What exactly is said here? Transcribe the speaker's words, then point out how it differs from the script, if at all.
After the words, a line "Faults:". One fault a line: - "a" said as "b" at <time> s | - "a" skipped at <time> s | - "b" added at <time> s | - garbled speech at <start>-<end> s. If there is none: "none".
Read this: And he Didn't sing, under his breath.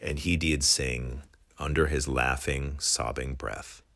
And he DID sing, under his laughing, sobbing breath.
Faults:
- "Didn't" said as "DID" at 0.3 s
- "laughing sobbing" added at 2.1 s